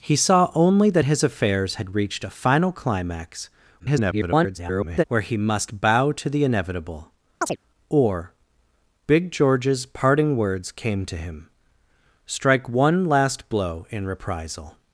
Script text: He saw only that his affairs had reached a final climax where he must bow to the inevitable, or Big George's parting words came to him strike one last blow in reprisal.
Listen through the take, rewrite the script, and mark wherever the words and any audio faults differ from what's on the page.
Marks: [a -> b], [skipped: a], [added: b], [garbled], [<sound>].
He saw only that his affairs had reached a final climax [garbled] where he must bow to the inevitable, [chirp] or Big George's parting words came to him strike one last blow in reprisal.